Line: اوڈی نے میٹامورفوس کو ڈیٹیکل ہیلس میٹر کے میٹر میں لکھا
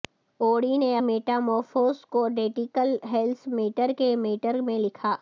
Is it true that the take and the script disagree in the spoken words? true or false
false